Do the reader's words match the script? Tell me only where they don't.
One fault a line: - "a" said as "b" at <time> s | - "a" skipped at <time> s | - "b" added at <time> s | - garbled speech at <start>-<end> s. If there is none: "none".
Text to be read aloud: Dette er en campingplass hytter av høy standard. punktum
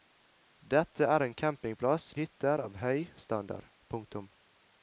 none